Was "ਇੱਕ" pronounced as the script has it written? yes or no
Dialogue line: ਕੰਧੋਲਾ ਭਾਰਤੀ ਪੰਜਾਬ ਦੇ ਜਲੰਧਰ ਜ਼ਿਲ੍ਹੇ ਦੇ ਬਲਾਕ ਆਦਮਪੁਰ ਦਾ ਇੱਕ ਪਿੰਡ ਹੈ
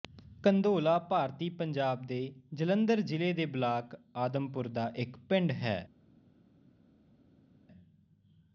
yes